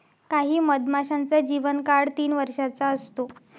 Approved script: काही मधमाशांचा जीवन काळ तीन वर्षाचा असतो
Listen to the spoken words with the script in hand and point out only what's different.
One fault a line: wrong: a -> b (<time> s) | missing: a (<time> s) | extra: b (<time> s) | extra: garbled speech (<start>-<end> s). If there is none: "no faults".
no faults